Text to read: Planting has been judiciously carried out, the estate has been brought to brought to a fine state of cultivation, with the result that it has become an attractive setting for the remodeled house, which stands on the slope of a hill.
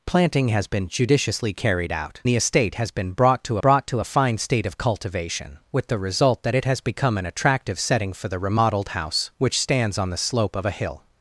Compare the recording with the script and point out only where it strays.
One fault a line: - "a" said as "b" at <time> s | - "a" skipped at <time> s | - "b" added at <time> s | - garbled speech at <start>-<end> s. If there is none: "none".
none